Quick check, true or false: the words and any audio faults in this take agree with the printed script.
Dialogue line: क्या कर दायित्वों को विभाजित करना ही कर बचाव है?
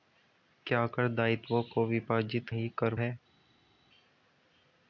false